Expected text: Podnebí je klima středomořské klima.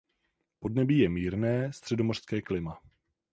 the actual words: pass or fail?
fail